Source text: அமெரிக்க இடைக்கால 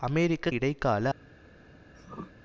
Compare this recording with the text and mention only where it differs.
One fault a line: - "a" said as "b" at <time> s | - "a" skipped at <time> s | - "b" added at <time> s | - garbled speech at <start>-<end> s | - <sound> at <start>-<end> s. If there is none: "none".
- throat clearing at 1.9-2.3 s